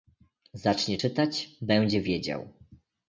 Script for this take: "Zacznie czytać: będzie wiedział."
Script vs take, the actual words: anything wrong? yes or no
no